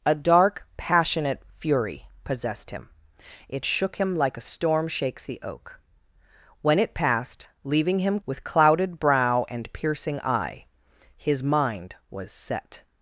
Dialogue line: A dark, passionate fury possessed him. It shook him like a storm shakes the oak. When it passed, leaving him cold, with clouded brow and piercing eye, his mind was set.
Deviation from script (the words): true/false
true